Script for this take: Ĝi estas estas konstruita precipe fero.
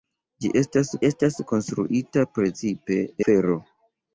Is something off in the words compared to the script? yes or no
no